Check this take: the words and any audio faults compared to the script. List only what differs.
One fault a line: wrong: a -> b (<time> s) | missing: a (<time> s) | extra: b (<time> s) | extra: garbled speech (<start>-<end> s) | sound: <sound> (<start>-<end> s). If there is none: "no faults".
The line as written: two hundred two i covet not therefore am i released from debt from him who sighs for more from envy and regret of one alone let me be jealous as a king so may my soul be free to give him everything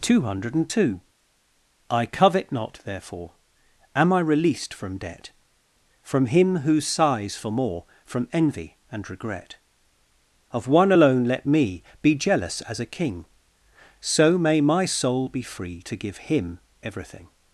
no faults